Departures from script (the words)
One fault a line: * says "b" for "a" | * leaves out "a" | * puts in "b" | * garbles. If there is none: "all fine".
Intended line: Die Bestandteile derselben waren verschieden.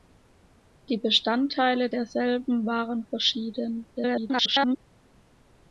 * garbles